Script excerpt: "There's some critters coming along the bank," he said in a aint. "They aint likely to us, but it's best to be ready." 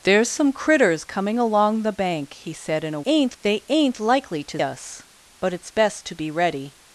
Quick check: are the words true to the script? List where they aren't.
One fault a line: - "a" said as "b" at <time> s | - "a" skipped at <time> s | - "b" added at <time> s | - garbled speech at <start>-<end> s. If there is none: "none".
none